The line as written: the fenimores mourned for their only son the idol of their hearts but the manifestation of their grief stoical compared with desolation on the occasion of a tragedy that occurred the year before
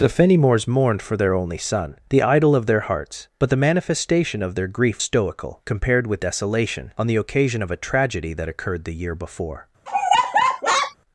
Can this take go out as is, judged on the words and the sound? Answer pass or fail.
fail